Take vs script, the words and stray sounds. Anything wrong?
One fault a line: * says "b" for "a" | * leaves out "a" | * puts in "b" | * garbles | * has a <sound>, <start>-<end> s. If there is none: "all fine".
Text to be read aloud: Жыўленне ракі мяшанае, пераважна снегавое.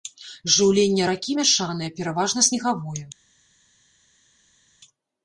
all fine